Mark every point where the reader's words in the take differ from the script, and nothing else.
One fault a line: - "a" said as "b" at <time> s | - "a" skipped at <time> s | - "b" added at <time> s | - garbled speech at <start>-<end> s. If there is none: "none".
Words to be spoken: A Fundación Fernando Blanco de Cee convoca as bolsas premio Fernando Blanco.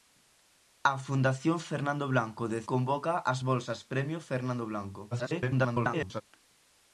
- "Cee" skipped at 2.6 s
- garbled speech at 5.1-6.2 s